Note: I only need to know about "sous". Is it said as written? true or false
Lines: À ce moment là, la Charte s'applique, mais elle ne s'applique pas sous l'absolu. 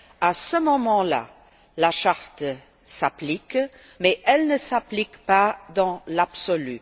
false